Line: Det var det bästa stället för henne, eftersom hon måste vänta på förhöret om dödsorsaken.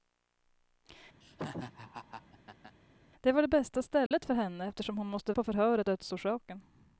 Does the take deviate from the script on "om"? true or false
true